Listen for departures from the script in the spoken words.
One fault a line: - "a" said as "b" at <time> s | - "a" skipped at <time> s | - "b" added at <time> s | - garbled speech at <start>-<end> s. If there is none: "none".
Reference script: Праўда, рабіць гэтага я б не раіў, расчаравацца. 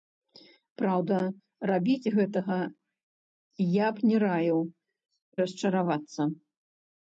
none